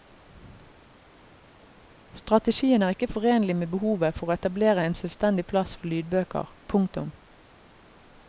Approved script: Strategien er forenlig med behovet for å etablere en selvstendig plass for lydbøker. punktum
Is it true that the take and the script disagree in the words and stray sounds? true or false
true